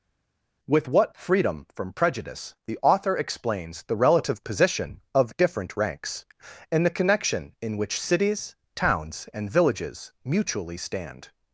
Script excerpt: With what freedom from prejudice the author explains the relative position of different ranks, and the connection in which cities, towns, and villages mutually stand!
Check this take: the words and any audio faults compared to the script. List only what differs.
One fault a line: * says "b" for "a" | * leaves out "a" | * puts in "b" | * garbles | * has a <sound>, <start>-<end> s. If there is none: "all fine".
all fine